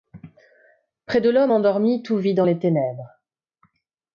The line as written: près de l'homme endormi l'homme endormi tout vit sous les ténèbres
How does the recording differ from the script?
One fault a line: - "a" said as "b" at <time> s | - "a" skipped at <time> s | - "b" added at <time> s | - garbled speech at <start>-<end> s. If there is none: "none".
- "l'homme endormi" skipped at 2.0 s
- "sous" said as "dans" at 2.3 s